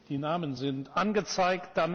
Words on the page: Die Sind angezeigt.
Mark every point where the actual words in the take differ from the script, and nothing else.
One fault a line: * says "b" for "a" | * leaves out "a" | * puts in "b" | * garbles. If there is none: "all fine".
* puts in "Namen"